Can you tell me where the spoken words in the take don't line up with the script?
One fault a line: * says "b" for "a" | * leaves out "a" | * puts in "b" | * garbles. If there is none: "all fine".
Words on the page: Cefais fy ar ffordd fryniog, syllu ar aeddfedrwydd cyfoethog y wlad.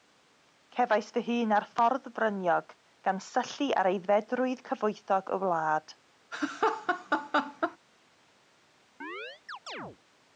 * puts in "hun"
* puts in "gan"